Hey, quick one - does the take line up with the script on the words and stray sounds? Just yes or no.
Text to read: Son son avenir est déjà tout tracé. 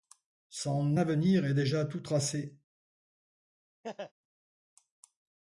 no